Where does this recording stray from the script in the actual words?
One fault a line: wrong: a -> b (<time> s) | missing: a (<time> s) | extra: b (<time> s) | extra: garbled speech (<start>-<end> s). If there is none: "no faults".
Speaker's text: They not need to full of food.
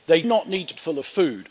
no faults